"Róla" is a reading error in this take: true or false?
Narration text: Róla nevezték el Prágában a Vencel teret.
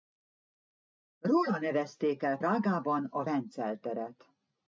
false